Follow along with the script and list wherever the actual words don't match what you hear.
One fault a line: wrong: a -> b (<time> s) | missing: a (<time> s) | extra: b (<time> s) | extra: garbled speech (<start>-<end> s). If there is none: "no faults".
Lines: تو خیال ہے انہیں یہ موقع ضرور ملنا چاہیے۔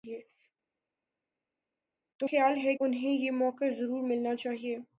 no faults